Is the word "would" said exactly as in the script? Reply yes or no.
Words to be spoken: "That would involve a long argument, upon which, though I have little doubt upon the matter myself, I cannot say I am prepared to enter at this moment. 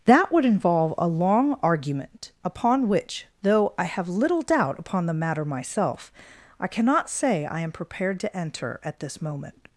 yes